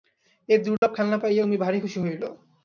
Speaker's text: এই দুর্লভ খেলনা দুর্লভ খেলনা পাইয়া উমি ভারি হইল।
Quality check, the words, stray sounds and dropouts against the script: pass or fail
fail